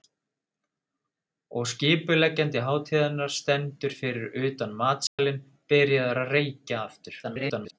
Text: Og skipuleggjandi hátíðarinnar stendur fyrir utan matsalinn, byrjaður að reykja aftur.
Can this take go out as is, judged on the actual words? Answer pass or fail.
fail